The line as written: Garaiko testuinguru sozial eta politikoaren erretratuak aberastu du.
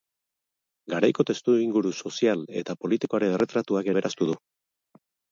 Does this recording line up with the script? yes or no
yes